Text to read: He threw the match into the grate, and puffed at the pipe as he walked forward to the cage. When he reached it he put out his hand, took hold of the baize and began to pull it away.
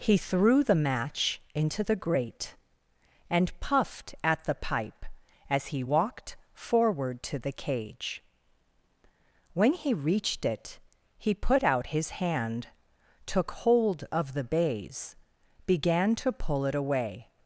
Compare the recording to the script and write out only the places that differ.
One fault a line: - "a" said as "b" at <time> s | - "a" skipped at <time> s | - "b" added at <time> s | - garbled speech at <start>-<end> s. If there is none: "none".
- "and" skipped at 15.2 s